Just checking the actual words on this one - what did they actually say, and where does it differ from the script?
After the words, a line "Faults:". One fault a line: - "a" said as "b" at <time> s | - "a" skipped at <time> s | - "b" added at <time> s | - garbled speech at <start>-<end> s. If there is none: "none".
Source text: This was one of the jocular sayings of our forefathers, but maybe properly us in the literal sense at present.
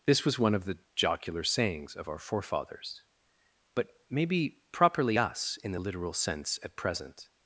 This was one of the jocular sayings of our forefathers, but maybe properly us in the literal sense at present.
Faults:
none